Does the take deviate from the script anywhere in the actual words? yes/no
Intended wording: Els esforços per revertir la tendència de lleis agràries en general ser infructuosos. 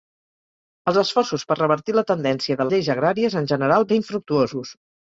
no